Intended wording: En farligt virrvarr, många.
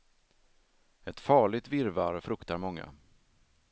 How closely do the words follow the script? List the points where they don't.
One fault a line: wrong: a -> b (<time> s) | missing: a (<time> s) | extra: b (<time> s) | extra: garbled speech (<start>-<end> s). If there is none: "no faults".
wrong: En -> Ett (1.0 s)
extra: fruktar (2.2 s)